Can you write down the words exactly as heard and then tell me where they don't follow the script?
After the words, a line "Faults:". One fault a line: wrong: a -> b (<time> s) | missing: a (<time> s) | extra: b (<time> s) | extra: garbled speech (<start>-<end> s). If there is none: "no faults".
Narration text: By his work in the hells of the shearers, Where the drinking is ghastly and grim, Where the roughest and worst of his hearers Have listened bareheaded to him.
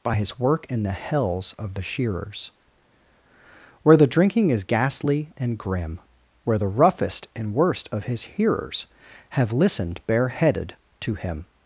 By his work in the hells of the shearers, Where the drinking is ghastly and grim, Where the roughest and worst of his hearers Have listened bareheaded to him.
Faults:
no faults